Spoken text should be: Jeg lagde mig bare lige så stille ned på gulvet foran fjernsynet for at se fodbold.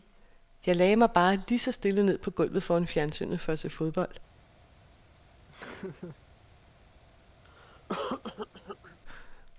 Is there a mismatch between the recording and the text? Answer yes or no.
no